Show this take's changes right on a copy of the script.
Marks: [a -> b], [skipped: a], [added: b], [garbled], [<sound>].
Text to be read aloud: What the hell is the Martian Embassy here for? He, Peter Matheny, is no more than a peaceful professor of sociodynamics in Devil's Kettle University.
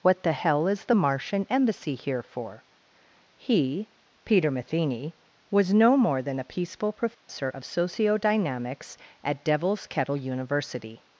What the hell is the Martian Embassy here for? He, Peter Matheny, [is -> was] no more than a peaceful professor [dropout] of sociodynamics [in -> at] Devil's Kettle University.